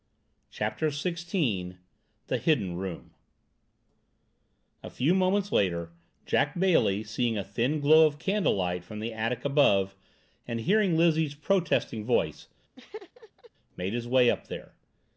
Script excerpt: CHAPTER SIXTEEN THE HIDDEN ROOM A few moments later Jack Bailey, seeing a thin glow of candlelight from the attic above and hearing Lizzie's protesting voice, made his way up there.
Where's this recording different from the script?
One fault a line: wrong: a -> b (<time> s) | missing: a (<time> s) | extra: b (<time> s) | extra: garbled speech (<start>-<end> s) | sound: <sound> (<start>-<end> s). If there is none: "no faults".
sound: laugh (12.8-13.5 s)